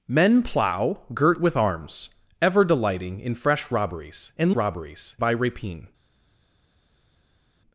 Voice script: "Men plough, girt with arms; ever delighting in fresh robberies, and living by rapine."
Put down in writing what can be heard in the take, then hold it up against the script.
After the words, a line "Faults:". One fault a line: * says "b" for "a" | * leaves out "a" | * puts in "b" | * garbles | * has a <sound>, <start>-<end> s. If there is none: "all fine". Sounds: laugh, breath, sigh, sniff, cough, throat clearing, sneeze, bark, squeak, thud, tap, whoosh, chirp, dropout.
"Men plough, girt with arms; ever delighting in fresh robberies, and robberies by rapine."
Faults:
* says "robberies" for "living"